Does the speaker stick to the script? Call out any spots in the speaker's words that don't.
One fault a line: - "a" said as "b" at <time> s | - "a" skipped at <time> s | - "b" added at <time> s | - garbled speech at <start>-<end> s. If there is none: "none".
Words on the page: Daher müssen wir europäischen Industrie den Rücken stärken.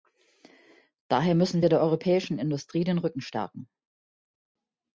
- "der" added at 1.7 s